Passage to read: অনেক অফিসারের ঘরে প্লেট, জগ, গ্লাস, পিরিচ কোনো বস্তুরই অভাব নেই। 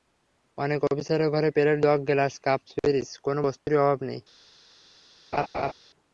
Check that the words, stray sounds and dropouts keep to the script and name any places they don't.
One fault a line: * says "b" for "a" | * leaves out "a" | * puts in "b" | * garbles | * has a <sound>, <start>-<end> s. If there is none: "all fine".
* puts in "কাপ"
* has a dropout, 3.6-3.7 s
* has a laugh, 5.3-5.7 s